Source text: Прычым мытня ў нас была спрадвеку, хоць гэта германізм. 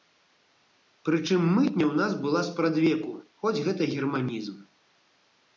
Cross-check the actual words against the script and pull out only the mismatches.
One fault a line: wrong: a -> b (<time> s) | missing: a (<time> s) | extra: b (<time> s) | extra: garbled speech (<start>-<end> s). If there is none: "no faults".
no faults